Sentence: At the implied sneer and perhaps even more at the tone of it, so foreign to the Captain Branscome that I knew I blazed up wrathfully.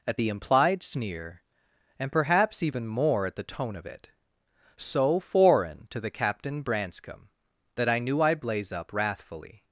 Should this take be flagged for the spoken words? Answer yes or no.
yes